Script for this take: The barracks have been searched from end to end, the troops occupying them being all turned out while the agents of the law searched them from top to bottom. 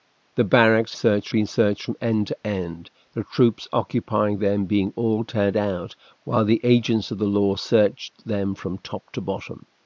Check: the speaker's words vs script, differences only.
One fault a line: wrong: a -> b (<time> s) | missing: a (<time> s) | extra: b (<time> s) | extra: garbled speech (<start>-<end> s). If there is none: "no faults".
wrong: have -> searched (0.9 s)